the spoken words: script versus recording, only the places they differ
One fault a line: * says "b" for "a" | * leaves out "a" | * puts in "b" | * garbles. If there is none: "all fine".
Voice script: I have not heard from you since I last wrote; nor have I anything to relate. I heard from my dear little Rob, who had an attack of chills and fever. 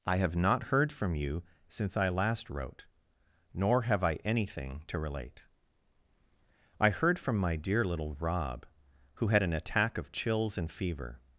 all fine